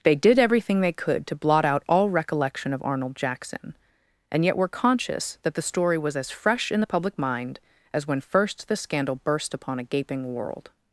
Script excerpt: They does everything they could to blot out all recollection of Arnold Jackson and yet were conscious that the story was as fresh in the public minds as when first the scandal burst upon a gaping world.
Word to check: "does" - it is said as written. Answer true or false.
false